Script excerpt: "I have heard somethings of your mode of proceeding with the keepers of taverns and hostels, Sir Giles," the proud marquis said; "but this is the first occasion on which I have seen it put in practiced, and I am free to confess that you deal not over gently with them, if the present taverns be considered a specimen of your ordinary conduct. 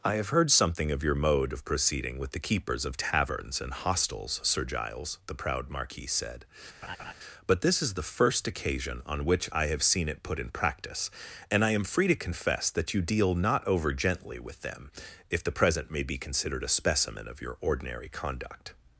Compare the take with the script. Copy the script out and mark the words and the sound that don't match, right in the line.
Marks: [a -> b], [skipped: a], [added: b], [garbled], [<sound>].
"I have heard [somethings -> something] of your mode of proceeding with the keepers of taverns and hostels, Sir Giles," the proud marquis said; [laugh] "but this is the first occasion on which I have seen it put in [practiced, -> practice] and I am free to confess that you deal not over gently with them, if the present [taverns -> may] be considered a specimen of your ordinary conduct.